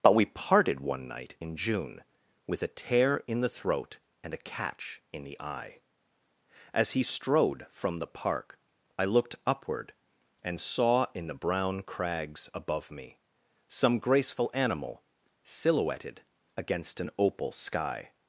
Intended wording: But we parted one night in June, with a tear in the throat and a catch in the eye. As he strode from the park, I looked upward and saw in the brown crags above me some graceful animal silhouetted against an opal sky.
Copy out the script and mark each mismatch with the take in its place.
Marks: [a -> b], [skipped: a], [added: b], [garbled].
But we parted one night in June, with a tear in the throat and a catch in the eye. As he strode from the park, I looked upward and saw in the brown crags above me some graceful animal silhouetted against an opal sky.